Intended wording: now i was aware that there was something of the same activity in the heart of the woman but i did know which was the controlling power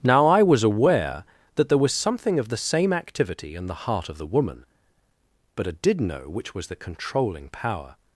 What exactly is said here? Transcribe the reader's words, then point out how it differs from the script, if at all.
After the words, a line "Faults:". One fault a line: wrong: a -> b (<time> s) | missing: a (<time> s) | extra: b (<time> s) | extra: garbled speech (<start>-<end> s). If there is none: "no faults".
now i was aware that there was something of the same activity in the heart of the woman but i did know which was the controlling power
Faults:
no faults